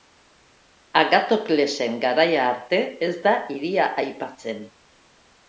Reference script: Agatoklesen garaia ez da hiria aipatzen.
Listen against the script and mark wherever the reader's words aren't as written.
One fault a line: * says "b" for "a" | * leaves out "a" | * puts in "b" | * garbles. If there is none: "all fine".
* puts in "arte"